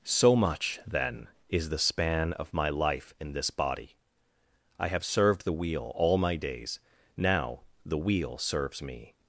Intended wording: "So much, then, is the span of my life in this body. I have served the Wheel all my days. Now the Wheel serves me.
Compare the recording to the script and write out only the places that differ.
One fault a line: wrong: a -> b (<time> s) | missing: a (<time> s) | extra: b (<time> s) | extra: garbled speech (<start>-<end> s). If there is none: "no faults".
no faults